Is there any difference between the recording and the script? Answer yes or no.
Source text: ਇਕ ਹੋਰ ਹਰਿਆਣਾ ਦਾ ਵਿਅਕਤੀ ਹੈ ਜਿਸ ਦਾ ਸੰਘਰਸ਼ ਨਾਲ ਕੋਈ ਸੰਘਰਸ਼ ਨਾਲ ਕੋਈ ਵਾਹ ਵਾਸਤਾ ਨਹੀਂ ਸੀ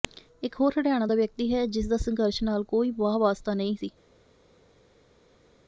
yes